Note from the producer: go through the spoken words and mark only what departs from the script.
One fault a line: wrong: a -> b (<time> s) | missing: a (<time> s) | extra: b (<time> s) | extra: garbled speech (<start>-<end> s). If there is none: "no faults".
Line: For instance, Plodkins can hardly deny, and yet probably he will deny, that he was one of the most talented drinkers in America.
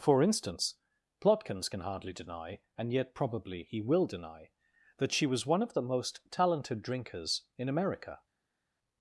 wrong: he -> she (5.1 s)